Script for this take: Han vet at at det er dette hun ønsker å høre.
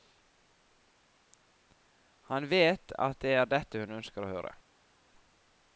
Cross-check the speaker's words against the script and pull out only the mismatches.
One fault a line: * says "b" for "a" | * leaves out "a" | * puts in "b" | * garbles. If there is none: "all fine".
* leaves out "at"